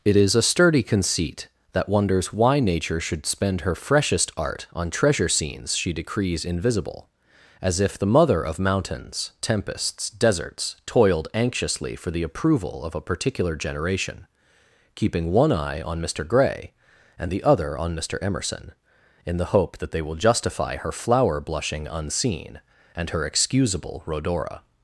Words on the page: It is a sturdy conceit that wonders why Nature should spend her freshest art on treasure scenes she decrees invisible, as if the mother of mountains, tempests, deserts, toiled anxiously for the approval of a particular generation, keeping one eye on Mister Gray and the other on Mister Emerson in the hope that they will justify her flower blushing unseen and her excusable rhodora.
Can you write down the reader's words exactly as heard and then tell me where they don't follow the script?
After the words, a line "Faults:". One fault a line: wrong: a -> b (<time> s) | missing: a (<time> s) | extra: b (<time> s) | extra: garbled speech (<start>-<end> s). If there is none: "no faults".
It is a sturdy conceit that wonders why Nature should spend her freshest art on treasure scenes she decrees invisible, as if the mother of mountains, tempests, deserts, toiled anxiously for the approval of a particular generation, keeping one eye on Mister Gray and the other on Mister Emerson in the hope that they will justify her flower blushing unseen and her excusable rhodora.
Faults:
no faults